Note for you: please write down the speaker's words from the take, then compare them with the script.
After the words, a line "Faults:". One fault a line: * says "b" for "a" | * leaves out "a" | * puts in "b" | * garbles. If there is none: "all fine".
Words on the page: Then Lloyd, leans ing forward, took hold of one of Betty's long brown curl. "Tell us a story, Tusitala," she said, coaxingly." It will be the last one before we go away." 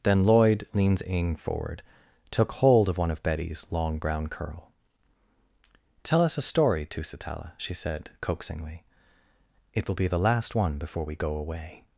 Then Lloyd, leans ing forward, took hold of one of Betty's long brown curl. "Tell us a story, Tusitala," she said, coaxingly." It will be the last one before we go away."
Faults:
all fine